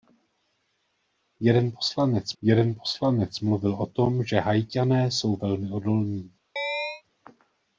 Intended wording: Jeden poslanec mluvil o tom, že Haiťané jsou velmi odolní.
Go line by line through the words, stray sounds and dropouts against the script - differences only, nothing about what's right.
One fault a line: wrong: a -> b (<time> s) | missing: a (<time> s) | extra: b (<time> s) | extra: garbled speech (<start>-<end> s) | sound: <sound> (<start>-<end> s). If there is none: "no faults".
extra: jeden poslanec (2.4 s)
sound: chirp (6.6-7.0 s)